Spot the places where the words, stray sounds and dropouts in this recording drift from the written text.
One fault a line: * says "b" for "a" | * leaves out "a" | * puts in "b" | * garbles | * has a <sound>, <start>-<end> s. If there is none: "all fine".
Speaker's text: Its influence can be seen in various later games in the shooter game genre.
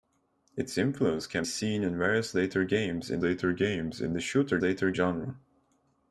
* leaves out "be"
* puts in "later games in"
* says "later" for "game"